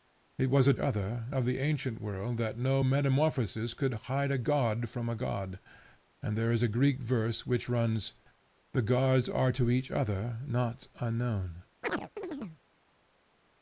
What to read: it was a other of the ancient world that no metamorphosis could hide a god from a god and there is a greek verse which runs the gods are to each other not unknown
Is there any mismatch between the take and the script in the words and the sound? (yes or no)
yes